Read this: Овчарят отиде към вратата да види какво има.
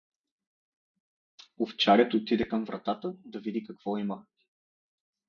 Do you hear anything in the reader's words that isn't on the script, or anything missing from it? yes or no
no